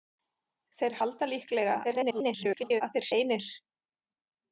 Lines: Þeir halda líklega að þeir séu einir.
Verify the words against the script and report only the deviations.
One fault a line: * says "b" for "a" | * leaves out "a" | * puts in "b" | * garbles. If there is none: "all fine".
* garbles
* leaves out "séu"